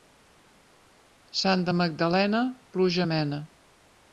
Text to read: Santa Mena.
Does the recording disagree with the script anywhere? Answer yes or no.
yes